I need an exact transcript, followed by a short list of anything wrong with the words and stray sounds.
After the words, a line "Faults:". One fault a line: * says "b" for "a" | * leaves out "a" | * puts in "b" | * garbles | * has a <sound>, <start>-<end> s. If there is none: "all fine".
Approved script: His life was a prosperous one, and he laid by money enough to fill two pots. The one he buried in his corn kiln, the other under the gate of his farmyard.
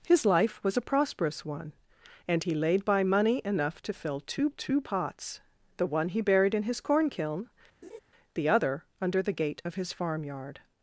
His life was a prosperous one, and he laid by money enough to fill two two pots. The one he buried in his corn kiln, the other under the gate of his farmyard.
Faults:
* puts in "two"
* has a laugh, 7.8-8.0 s